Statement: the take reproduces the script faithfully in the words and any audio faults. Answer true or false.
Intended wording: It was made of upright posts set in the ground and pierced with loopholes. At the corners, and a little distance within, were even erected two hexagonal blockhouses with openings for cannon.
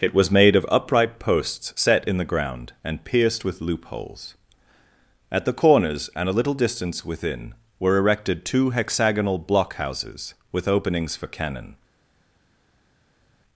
false